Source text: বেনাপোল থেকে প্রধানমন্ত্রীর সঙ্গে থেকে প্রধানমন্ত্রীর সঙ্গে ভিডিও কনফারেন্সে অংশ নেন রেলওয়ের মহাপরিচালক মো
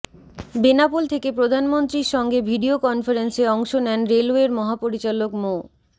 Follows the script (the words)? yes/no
no